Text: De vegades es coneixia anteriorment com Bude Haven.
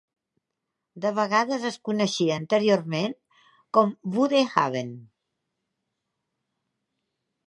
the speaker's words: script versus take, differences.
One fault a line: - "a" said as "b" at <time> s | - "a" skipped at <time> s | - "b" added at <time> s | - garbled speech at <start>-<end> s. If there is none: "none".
none